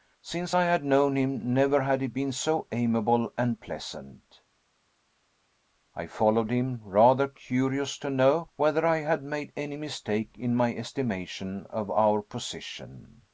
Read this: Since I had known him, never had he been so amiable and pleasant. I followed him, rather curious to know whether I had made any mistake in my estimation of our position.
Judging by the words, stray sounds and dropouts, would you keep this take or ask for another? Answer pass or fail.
pass